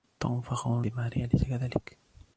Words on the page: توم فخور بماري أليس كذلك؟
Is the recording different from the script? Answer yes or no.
no